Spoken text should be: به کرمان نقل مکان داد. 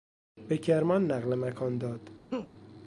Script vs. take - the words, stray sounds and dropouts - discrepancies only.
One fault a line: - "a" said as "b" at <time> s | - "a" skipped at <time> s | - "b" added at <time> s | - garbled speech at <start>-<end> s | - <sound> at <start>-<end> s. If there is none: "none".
- laugh at 2.3-2.5 s